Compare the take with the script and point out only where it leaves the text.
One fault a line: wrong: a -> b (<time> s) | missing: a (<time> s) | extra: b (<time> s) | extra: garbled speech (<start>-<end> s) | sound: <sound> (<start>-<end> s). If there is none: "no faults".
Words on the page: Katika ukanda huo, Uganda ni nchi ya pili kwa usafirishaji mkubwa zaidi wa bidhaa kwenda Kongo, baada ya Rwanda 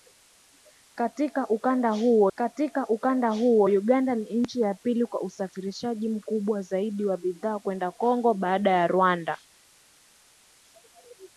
extra: katika ukanda huo (2.4 s)